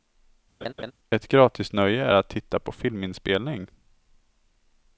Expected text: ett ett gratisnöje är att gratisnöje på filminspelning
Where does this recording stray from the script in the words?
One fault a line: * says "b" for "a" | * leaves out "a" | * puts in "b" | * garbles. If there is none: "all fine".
* leaves out "ett"
* says "titta" for "gratisnöje"